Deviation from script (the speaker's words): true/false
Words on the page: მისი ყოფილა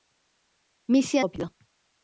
false